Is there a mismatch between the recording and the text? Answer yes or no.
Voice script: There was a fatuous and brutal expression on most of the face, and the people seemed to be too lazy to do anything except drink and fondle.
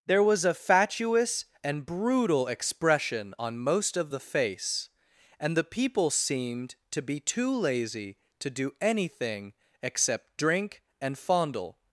no